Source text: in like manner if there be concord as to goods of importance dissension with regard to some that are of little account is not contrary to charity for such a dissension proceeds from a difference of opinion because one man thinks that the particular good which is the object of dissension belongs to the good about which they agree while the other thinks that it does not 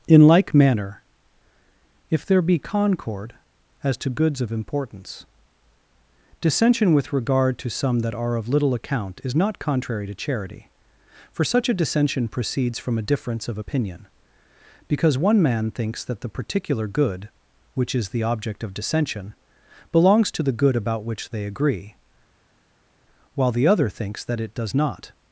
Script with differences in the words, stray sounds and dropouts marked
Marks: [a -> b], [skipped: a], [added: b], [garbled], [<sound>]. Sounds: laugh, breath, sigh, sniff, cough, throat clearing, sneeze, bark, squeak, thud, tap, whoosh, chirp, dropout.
in like manner if there be concord as to goods of importance dissension with regard to some that are of little account is not contrary to charity for such a dissension proceeds from a difference of opinion because one man thinks that the particular good which is the object of dissension belongs to the good about which they agree while the other thinks that it does not